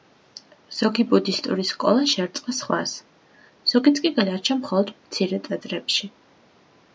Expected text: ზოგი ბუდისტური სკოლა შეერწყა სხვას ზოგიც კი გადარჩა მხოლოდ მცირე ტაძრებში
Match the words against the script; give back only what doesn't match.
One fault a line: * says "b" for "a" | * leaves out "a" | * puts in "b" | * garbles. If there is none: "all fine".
all fine